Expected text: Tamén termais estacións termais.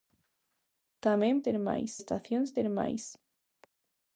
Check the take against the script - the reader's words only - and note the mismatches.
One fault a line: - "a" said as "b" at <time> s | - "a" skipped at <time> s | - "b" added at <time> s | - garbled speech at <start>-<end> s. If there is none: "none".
none